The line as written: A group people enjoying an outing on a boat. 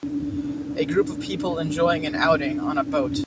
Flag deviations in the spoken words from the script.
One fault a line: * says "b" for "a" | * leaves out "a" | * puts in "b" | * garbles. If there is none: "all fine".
* puts in "of"